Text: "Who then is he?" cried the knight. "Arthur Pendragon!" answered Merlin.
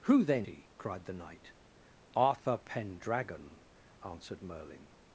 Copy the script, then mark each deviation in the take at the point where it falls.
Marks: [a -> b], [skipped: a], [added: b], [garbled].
"Who then [skipped: is] he?" cried the knight. "Arthur Pendragon!" answered Merlin.